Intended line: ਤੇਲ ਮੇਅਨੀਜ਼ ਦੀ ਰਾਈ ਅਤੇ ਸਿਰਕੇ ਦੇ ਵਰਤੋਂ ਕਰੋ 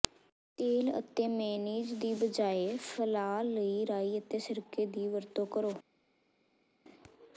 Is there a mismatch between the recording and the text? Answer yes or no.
yes